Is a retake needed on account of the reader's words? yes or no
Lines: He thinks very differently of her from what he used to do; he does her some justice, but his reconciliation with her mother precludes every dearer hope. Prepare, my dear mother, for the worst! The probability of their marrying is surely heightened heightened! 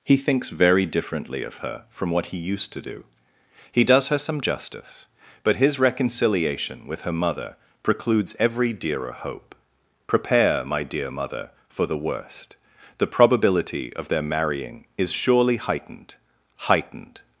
no